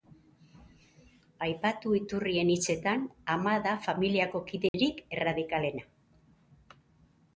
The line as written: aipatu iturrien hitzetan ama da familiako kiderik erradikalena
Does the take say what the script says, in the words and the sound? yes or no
no